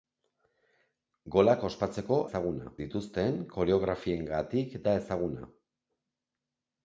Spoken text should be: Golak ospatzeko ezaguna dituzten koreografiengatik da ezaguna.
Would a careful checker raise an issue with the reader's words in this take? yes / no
no